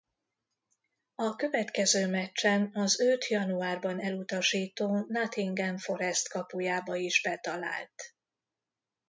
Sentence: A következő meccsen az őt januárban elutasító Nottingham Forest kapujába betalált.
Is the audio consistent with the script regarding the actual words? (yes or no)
no